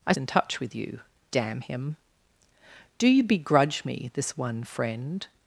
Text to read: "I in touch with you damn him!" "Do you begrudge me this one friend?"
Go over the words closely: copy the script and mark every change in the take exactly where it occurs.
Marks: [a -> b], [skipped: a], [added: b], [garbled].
"I in touch with you damn him!" "Do you begrudge me this one friend?"